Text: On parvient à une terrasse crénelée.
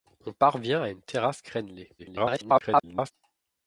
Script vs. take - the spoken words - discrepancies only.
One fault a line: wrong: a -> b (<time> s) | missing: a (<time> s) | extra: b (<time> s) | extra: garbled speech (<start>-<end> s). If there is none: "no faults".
extra: garbled speech (2.0-3.1 s)